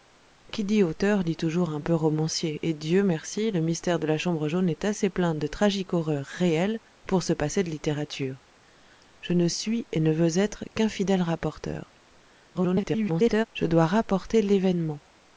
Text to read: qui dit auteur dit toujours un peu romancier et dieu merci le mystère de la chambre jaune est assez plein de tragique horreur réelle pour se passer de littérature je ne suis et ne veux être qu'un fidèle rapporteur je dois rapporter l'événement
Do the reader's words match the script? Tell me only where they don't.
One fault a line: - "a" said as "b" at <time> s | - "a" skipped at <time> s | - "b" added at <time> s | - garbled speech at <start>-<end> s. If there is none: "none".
- garbled speech at 12.5-13.5 s